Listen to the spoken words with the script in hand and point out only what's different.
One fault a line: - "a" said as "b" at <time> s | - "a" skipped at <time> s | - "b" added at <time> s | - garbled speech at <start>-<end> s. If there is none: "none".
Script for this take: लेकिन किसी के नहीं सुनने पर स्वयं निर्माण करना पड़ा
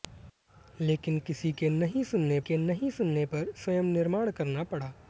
- "के नहीं सुनने" added at 2.4 s